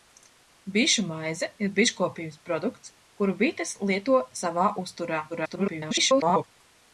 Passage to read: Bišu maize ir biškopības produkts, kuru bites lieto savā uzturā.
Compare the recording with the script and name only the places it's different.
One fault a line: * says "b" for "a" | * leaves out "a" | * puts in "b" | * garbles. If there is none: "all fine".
* garbles